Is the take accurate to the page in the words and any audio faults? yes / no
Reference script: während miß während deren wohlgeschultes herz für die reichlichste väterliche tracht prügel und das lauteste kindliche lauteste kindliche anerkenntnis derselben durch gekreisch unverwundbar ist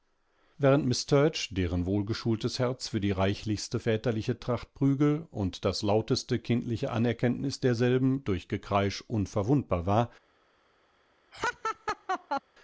no